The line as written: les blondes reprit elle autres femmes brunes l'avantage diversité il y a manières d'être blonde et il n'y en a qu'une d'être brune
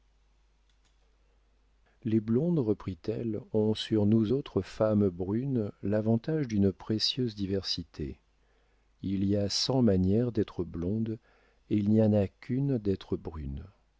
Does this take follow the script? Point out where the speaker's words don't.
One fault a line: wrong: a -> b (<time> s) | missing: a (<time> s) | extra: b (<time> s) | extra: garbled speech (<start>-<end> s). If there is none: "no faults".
extra: ont sur nous (3.5 s)
extra: d'une précieuse (6.5 s)
extra: cent (9.5 s)